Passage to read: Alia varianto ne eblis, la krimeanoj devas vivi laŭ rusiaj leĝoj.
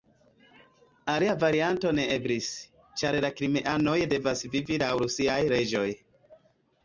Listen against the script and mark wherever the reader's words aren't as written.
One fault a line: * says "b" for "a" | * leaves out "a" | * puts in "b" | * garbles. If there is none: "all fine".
* puts in "ĉar"